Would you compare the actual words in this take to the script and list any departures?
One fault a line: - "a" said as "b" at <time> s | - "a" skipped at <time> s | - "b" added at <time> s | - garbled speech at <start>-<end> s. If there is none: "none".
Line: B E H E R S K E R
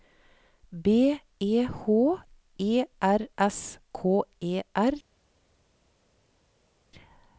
none